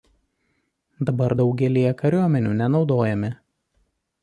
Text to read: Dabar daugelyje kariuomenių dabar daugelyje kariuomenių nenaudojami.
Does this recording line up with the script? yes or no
no